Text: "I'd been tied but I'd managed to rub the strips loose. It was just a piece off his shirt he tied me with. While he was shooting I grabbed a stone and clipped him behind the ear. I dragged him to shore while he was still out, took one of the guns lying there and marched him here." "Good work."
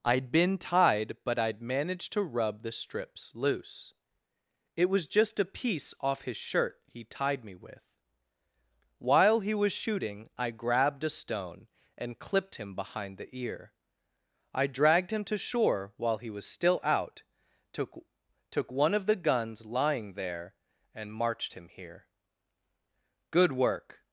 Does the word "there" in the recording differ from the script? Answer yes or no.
no